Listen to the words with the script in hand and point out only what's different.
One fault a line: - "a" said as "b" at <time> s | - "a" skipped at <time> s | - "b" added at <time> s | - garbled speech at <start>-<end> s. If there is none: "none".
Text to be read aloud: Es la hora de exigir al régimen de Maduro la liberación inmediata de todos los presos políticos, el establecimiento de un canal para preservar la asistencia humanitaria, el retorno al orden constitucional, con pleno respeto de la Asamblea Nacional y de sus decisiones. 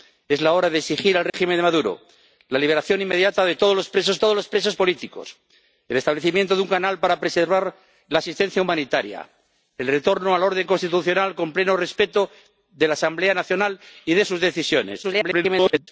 - "todos los presos" added at 4.2 s
- garbled speech at 15.0-15.9 s